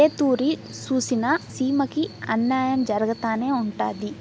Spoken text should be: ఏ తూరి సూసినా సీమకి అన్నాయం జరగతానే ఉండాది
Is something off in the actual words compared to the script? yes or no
no